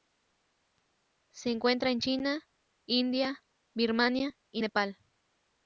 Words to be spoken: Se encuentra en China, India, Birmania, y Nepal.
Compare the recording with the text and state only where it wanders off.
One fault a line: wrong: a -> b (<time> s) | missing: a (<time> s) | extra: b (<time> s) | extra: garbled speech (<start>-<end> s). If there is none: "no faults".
no faults